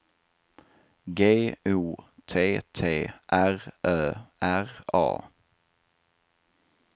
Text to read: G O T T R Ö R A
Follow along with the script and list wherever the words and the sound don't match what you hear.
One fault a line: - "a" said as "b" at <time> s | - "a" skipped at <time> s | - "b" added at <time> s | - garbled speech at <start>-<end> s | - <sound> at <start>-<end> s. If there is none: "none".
none